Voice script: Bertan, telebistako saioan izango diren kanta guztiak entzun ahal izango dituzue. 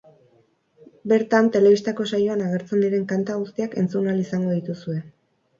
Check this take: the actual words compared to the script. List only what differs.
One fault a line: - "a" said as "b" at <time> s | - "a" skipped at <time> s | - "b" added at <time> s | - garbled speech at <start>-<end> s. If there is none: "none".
- "izango" said as "agertzen" at 2.5 s